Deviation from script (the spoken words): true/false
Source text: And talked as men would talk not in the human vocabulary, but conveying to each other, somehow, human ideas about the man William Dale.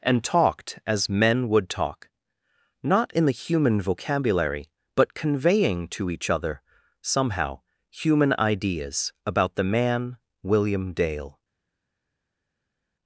false